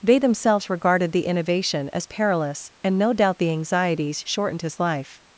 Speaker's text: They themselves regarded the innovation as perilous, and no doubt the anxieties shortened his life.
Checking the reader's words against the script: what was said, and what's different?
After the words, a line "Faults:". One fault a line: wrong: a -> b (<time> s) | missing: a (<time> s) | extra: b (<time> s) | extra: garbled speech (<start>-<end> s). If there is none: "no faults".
They themselves regarded the innovation as perilous, and no doubt the anxieties shortened his life.
Faults:
no faults